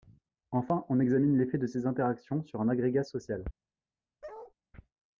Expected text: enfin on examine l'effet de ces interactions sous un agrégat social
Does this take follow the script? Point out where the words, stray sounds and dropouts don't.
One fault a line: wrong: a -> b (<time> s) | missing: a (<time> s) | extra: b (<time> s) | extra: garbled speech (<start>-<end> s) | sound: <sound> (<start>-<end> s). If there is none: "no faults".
wrong: sous -> sur (2.4 s)
sound: bark (4.2-4.5 s)